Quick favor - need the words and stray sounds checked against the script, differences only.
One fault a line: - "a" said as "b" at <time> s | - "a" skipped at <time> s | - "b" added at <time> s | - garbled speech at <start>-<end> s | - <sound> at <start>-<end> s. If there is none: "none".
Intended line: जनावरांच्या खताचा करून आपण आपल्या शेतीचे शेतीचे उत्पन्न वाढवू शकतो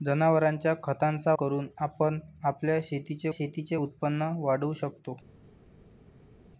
none